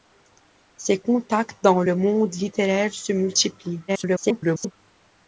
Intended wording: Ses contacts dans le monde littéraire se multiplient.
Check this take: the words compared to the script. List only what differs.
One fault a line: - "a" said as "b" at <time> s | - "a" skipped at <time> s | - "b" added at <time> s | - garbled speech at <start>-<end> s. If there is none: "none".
- garbled speech at 3.9-4.7 s